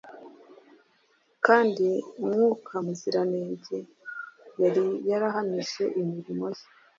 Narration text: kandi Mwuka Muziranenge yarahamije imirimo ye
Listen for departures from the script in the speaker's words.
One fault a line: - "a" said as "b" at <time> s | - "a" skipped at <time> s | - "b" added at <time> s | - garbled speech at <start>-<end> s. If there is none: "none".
- "yari" added at 4.6 s